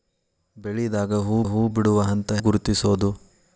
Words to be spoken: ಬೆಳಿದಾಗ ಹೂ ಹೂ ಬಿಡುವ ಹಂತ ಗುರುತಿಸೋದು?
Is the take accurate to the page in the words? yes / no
yes